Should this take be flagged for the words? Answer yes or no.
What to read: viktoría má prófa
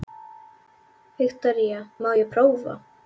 yes